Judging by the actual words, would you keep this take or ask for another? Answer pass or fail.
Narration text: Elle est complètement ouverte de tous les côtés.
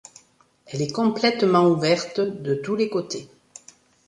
pass